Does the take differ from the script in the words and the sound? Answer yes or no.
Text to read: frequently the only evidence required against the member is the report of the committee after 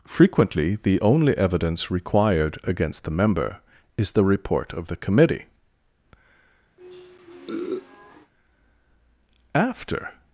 yes